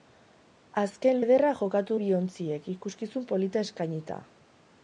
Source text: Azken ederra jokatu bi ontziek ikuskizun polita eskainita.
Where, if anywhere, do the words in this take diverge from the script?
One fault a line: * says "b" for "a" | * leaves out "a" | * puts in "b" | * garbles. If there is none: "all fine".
all fine